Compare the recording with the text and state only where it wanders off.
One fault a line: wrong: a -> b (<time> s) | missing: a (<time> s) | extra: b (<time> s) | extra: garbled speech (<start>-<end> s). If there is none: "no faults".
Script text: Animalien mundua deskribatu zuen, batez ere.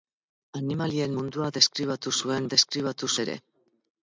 wrong: batez -> deskribatu (2.5 s)